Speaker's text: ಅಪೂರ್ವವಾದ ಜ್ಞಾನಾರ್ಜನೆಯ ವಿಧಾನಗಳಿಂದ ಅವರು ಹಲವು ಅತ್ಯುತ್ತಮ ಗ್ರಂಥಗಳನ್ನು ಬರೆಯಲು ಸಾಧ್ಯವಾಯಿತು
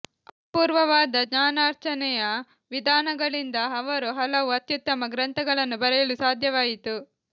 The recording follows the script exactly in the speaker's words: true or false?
true